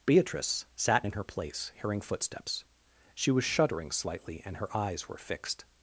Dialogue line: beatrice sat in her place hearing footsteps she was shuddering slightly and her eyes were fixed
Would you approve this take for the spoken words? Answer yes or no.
yes